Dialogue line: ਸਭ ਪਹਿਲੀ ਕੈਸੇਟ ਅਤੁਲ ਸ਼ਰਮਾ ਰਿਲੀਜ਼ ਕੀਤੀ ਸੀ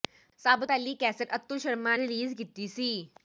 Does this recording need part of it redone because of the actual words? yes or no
no